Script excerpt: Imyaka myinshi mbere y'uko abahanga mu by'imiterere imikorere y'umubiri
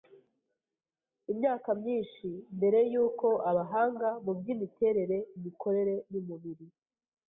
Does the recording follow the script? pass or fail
pass